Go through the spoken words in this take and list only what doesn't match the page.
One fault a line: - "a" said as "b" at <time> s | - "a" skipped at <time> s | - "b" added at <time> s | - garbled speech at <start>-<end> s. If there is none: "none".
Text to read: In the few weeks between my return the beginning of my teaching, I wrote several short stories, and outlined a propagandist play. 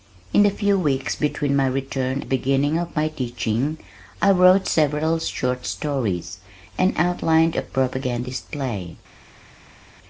none